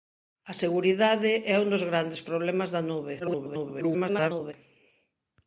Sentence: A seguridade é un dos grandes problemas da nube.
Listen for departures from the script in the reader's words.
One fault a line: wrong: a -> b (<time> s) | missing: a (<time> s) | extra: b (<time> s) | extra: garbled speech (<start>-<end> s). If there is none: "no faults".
extra: garbled speech (3.2-4.5 s)